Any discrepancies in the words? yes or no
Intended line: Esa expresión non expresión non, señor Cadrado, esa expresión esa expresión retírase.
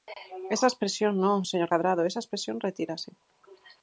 yes